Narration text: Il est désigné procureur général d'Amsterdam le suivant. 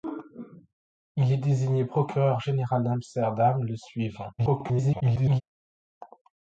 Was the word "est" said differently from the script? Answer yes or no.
no